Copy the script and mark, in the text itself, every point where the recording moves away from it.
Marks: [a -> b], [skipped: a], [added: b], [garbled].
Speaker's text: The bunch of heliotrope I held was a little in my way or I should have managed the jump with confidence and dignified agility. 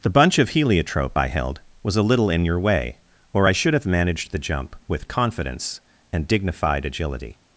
The bunch of heliotrope I held was a little in [my -> your] way or I should have managed the jump with confidence and dignified agility.